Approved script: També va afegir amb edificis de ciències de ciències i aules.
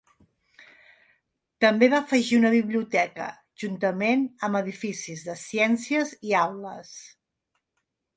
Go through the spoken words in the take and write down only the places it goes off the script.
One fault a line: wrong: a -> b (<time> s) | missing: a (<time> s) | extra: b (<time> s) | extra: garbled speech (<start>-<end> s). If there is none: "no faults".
extra: una biblioteca juntament (2.4 s)
missing: de ciències (6.2 s)